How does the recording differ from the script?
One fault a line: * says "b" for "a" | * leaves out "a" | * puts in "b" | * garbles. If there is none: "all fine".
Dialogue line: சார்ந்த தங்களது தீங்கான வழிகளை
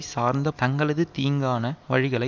all fine